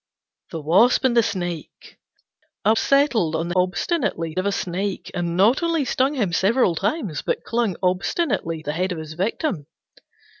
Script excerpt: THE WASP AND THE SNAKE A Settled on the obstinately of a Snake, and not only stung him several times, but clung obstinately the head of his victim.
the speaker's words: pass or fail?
pass